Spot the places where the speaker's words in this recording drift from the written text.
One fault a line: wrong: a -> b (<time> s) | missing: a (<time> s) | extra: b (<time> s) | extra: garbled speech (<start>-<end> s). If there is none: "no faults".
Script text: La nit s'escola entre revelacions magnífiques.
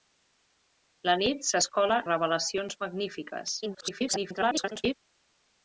missing: entre (2.0 s)
extra: garbled speech (3.6-4.9 s)